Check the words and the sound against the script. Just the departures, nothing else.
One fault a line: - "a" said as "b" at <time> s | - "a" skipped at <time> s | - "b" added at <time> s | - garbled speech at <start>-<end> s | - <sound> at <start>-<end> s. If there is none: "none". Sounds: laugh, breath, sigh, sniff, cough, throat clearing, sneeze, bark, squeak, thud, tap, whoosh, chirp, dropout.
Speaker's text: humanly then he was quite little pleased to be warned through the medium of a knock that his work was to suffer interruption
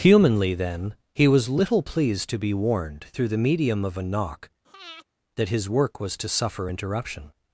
- "quite" skipped at 1.5 s
- breath at 4.6-5.1 s